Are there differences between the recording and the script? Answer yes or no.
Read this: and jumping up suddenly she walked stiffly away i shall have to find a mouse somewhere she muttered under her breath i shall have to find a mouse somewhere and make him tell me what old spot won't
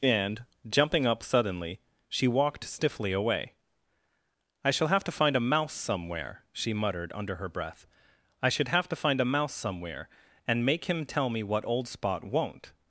yes